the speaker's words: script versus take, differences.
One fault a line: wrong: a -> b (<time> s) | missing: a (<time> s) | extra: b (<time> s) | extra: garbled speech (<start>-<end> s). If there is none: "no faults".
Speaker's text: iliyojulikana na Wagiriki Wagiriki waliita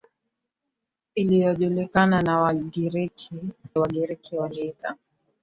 no faults